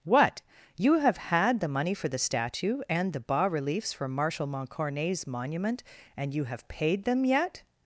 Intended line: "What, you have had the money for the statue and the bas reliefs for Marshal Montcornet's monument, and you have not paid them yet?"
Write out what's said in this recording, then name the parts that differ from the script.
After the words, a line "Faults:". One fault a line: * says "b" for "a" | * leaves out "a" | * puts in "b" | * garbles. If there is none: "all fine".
"What, you have had the money for the statue and the bas reliefs for Marshal Montcornet's monument, and you have paid them yet?"
Faults:
* leaves out "not"